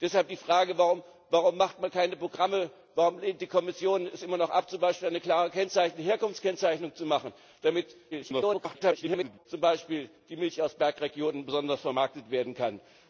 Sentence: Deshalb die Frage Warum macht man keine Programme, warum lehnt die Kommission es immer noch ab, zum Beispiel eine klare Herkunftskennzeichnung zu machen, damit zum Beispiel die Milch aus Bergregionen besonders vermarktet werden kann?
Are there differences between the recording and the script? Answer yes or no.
yes